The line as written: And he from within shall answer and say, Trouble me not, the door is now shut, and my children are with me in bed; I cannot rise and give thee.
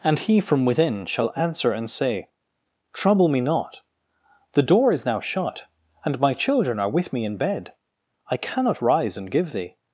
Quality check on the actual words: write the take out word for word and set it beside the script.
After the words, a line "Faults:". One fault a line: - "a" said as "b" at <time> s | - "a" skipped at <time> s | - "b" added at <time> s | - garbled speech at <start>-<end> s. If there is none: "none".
And he from within shall answer and say, Trouble me not, the door is now shut, and my children are with me in bed; I cannot rise and give thee.
Faults:
none